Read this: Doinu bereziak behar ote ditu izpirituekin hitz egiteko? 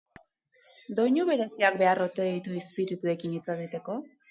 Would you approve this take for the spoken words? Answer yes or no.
yes